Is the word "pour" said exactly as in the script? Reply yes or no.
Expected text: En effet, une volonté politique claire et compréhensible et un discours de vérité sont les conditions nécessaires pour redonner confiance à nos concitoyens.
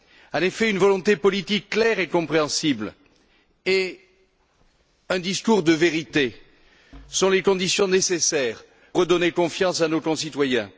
no